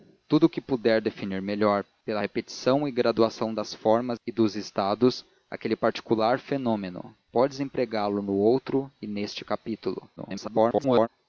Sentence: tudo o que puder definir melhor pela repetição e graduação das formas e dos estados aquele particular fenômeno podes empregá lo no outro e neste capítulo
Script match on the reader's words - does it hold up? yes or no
no